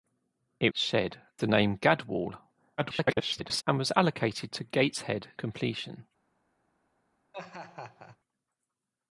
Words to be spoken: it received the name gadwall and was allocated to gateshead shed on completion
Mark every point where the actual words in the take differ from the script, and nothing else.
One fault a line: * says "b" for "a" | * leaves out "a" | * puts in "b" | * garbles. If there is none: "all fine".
* says "shed" for "received"
* garbles
* leaves out "shed on"